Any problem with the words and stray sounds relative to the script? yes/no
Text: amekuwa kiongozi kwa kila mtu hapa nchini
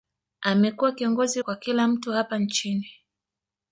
no